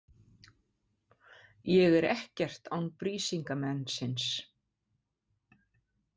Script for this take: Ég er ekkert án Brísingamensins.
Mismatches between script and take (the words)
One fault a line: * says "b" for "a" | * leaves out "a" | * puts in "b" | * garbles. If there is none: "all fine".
all fine